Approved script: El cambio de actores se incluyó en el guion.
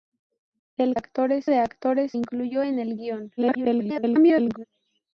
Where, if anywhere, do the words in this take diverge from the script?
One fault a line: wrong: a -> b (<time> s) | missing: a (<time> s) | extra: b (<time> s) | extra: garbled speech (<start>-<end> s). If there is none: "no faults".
wrong: cambio -> actores (0.9 s)
missing: se (2.1 s)
extra: garbled speech (3.4-4.7 s)